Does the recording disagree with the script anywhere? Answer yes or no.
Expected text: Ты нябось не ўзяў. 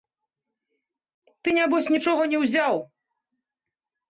yes